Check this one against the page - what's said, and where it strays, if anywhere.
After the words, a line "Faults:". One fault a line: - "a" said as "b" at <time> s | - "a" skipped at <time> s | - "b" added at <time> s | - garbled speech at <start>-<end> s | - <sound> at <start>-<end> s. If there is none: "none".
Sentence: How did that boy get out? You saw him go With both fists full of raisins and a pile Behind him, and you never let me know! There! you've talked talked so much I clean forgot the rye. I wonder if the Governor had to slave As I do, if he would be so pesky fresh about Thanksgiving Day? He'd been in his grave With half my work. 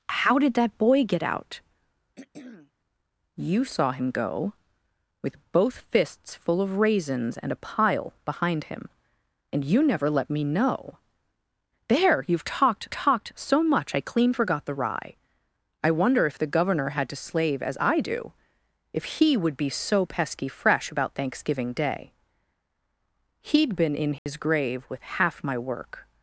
How did that boy get out? You saw him go With both fists full of raisins and a pile Behind him, and you never let me know! There! you've talked talked so much I clean forgot the rye. I wonder if the Governor had to slave As I do, if he would be so pesky fresh about Thanksgiving Day? He'd been in his grave With half my work.
Faults:
- throat clearing at 2.2-2.7 s
- dropout at 24.2-24.3 s